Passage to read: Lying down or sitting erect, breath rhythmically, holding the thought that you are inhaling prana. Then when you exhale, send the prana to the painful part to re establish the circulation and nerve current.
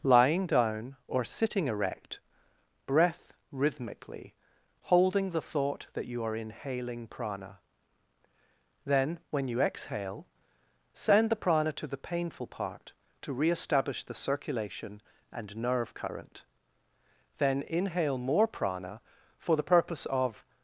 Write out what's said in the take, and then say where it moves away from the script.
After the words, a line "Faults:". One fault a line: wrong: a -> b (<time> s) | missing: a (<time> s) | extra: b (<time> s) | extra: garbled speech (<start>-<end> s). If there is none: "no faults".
Lying down or sitting erect, breath rhythmically, holding the thought that you are inhaling prana. Then when you exhale, send the prana to the painful part to re establish the circulation and nerve current. Then inhale more prana for the purpose of
Faults:
extra: Then inhale more prana for the purpose of (17.4 s)